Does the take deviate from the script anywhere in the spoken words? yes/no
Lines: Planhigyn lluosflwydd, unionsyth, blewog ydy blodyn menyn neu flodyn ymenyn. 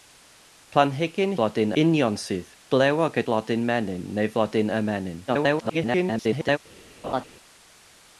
yes